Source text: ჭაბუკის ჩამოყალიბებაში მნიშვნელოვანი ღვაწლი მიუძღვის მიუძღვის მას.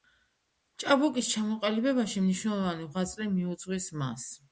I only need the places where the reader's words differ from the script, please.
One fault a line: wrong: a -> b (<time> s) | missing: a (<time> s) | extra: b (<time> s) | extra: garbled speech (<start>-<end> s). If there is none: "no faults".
missing: მიუძღვის (3.9 s)